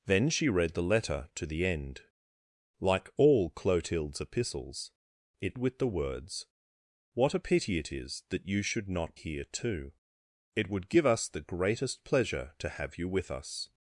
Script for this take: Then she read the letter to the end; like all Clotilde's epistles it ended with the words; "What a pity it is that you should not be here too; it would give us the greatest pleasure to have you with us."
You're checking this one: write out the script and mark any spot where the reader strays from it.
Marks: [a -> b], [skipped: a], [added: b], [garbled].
Then she read the letter to the end; like all Clotilde's epistles it [skipped: ended] with the words; "What a pity it is that you should not [skipped: be] here too; it would give us the greatest pleasure to have you with us."